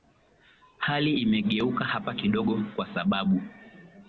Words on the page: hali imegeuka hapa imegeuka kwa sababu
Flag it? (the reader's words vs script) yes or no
yes